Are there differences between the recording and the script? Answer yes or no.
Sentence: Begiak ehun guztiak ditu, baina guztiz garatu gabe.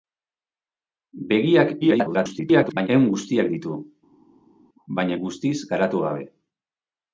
yes